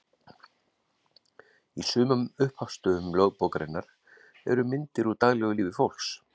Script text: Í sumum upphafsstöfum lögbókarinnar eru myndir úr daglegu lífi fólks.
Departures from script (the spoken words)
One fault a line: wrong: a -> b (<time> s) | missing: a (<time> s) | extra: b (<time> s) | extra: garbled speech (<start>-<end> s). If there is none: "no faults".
no faults